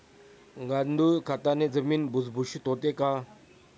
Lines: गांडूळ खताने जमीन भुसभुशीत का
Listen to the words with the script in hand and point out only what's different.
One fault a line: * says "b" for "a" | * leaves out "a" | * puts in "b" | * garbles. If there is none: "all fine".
* puts in "होते"